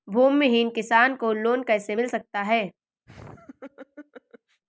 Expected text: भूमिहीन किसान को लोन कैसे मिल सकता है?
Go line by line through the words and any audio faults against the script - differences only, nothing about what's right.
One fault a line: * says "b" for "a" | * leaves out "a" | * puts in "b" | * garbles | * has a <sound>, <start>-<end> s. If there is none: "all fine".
* has a laugh, 3.1-4.6 s